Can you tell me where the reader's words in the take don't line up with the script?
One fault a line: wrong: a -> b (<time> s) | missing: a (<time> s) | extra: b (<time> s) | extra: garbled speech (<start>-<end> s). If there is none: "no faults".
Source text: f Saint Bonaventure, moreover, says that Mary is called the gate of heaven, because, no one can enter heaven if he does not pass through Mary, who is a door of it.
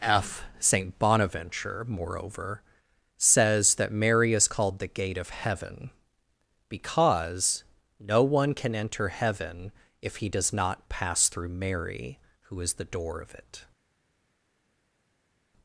wrong: a -> the (12.7 s)